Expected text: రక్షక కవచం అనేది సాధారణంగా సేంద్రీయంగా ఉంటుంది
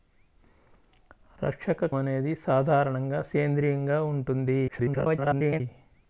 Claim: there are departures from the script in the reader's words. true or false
true